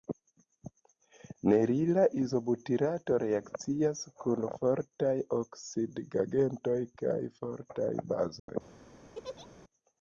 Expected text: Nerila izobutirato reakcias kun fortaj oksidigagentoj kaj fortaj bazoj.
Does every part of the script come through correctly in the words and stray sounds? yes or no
no